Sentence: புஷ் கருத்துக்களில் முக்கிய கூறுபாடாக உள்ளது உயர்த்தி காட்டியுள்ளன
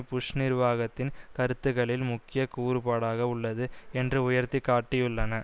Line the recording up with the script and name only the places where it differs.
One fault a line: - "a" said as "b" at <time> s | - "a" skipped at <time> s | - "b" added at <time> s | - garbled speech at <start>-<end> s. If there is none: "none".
- "நிர்வாகத்தின்" added at 0.3 s
- "என்று" added at 3.9 s